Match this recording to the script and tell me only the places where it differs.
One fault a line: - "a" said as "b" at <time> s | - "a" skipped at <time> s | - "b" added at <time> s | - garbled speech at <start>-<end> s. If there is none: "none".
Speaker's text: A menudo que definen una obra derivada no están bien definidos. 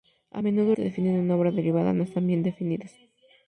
none